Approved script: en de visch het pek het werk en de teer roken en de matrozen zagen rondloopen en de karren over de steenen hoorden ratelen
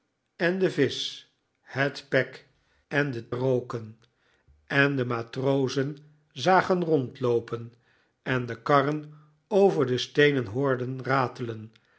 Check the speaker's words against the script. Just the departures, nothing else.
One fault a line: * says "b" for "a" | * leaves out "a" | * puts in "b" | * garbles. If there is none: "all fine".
* leaves out "het werk"
* leaves out "teer"